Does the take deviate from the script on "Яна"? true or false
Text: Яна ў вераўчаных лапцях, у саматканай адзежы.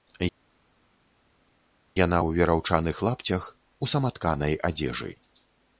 false